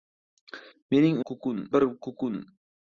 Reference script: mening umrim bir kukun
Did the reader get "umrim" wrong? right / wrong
wrong